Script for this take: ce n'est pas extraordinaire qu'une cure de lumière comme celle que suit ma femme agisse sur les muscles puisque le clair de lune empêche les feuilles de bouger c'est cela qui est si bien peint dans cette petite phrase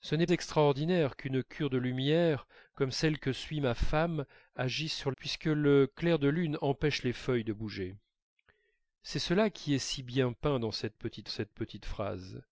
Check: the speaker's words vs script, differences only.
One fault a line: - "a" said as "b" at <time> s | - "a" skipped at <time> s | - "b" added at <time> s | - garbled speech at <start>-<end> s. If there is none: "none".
- "pas" skipped at 0.3 s
- "les muscles" skipped at 5.1 s
- "cette petite" added at 11.3 s